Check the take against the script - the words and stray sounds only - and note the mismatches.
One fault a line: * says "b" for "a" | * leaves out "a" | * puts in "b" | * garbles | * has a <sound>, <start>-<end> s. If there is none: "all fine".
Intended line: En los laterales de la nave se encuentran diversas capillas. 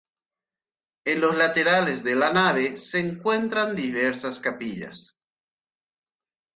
all fine